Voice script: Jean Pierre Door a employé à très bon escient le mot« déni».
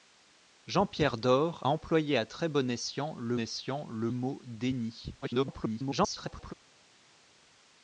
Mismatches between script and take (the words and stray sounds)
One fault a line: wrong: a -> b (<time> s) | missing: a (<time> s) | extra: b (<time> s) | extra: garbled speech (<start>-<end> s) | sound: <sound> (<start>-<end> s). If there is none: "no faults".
missing: a (1.6 s)
extra: escient le (3.4 s)
extra: garbled speech (5.2-6.5 s)